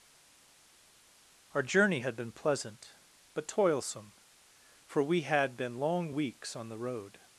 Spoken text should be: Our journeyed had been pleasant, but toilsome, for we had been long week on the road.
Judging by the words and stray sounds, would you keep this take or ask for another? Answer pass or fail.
fail